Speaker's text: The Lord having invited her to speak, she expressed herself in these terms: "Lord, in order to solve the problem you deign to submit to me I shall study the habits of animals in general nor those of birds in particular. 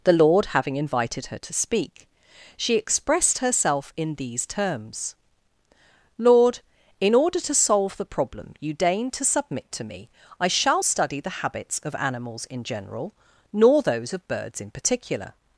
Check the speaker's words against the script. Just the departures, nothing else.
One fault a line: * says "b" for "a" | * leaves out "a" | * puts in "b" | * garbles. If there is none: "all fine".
all fine